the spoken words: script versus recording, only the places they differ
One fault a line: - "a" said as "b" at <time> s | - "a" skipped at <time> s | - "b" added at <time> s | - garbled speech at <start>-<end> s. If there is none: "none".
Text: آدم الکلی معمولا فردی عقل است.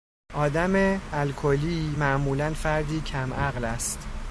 - "کم" added at 3.0 s